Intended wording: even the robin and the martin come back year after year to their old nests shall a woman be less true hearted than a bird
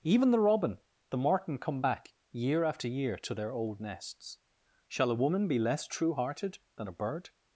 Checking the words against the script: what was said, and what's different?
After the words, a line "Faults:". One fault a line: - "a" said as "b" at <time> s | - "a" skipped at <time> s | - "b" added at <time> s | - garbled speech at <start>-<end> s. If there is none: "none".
even the robin the martin come back year after year to their old nests shall a woman be less true hearted than a bird
Faults:
- "and" skipped at 0.8 s